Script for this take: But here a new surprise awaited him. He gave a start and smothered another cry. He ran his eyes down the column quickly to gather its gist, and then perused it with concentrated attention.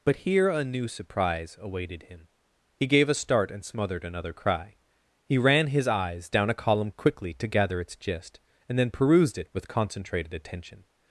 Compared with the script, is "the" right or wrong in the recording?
wrong